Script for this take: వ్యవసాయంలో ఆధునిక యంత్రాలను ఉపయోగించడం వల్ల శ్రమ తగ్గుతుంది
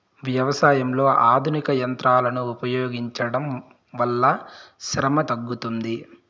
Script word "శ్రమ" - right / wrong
right